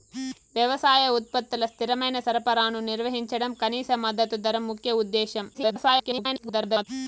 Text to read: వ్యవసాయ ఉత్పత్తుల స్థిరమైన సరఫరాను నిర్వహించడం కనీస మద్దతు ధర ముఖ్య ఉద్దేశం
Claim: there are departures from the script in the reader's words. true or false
true